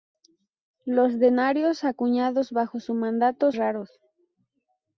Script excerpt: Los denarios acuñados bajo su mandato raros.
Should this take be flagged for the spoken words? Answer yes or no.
no